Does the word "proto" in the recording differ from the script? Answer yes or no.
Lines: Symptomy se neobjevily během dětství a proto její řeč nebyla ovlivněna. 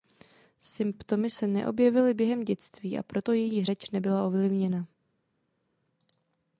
no